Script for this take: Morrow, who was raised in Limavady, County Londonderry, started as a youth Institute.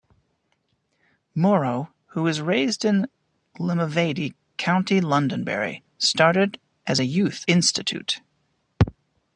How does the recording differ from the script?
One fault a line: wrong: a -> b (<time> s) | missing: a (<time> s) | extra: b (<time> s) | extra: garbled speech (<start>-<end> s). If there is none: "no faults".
no faults